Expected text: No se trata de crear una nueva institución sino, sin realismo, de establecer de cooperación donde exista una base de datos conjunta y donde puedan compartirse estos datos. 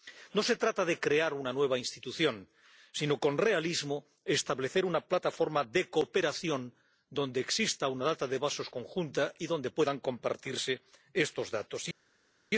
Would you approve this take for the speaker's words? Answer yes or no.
no